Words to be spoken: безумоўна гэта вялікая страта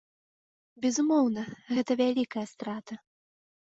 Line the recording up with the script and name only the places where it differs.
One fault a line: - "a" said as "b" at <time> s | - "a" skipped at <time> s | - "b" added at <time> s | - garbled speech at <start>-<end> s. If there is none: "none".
none